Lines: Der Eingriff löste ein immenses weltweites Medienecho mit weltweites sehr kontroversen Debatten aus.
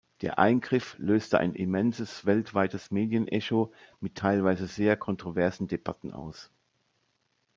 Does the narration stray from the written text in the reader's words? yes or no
yes